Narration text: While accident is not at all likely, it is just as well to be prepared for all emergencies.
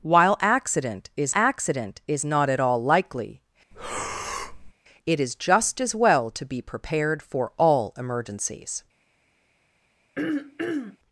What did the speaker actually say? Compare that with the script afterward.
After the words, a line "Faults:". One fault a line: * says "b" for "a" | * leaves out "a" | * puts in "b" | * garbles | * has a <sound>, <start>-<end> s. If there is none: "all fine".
While accident is accident is not at all likely, it is just as well to be prepared for all emergencies.
Faults:
* puts in "accident is"
* has a breath, 3.7-4.7 s
* has a throat clearing, 10.2-11.0 s